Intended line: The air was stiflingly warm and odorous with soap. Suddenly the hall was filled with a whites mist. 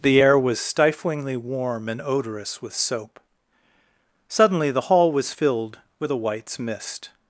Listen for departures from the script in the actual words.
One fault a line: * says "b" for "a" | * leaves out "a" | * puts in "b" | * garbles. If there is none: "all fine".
all fine